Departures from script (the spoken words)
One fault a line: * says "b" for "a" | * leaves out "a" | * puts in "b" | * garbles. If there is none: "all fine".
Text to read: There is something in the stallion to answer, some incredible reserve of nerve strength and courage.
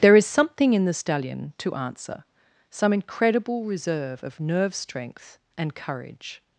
all fine